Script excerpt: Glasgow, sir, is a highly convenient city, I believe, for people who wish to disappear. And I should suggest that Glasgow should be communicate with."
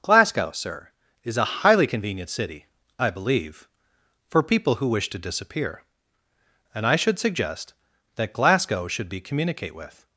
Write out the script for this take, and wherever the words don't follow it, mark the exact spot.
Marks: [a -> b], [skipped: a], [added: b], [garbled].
Glasgow, sir, is a highly convenient city, I believe, for people who wish to disappear. And I should suggest that Glasgow should be communicate with."